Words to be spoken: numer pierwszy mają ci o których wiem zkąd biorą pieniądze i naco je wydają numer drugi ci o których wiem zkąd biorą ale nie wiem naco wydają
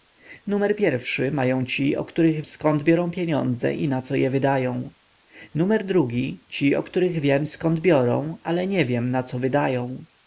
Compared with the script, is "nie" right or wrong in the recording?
right